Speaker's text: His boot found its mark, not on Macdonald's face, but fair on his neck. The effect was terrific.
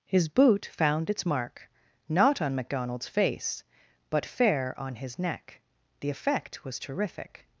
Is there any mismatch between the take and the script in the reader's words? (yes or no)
no